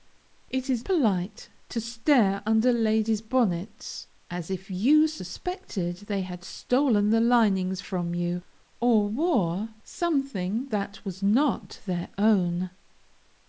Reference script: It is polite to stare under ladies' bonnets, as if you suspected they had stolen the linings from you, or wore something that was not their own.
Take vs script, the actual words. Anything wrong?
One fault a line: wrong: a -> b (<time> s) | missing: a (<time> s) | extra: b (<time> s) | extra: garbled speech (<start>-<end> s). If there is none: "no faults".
no faults